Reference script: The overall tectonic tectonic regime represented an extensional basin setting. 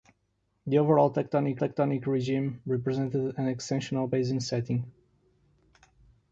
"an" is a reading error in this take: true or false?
false